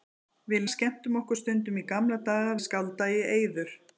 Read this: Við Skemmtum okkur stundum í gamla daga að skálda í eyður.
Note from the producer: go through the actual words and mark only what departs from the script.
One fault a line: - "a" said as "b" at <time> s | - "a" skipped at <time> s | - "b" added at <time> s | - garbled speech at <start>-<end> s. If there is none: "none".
none